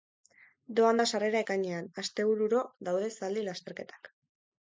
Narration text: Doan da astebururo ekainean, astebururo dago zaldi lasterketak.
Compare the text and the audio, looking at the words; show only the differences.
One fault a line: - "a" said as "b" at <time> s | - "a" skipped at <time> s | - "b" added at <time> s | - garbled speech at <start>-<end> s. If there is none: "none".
- "astebururo" said as "sarrera" at 1.1 s
- "dago" said as "daude" at 2.9 s